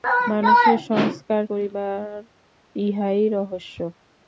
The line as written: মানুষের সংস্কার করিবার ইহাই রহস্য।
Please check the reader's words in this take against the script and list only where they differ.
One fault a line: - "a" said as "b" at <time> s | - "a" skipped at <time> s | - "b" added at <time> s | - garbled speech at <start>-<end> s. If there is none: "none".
none